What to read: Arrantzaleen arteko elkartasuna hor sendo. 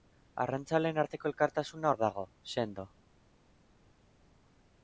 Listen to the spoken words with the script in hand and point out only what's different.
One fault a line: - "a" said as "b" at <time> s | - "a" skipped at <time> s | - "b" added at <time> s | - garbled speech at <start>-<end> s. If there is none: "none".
- "dago" added at 2.0 s